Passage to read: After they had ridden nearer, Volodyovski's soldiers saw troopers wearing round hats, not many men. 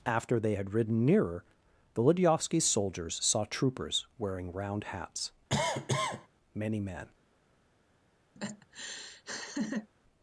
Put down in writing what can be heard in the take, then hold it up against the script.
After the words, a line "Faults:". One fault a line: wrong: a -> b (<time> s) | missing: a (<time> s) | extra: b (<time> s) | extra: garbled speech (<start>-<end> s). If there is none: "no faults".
After they had ridden nearer, Volodyovski's soldiers saw troopers wearing round hats, many men.
Faults:
missing: not (5.3 s)